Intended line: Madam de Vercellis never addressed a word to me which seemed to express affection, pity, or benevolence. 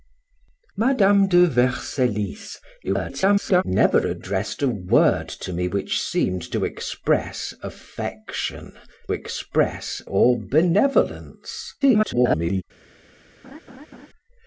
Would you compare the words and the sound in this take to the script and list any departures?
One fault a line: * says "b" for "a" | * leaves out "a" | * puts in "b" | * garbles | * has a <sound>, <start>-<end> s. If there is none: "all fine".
* garbles
* says "express" for "pity"
* garbles
* has a laugh, 13.4-14.1 s